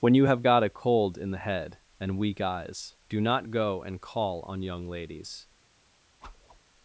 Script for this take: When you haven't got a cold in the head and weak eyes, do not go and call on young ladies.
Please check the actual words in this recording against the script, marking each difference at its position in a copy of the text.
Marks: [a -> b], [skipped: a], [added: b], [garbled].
When you [haven't -> have] got a cold in the head and weak eyes, do not go and call on young ladies.